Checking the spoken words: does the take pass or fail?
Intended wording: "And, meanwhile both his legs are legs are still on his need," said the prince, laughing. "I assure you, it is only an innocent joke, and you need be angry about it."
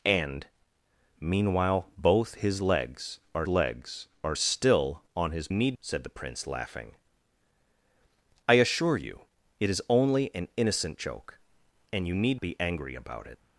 pass